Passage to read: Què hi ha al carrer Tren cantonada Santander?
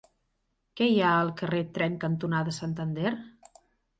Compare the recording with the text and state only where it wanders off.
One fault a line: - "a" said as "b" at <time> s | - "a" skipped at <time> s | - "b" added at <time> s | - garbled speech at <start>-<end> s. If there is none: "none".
none